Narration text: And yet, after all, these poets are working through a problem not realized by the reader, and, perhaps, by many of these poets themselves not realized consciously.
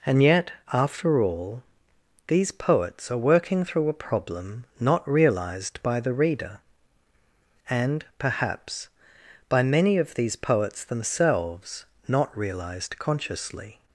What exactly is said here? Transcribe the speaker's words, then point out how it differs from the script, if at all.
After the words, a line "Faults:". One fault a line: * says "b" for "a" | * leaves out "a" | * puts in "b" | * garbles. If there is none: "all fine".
And yet, after all, these poets are working through a problem not realized by the reader, and, perhaps, by many of these poets themselves not realized consciously.
Faults:
all fine